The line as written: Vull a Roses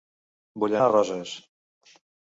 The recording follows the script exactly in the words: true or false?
true